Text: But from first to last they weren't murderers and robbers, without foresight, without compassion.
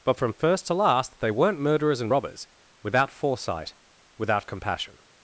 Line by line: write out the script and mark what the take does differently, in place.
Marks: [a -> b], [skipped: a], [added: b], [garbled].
But from first to last they weren't murderers and robbers, without foresight, without compassion.